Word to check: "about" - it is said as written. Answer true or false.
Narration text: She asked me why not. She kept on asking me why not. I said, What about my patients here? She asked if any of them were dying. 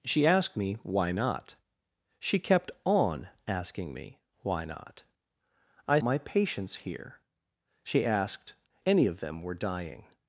false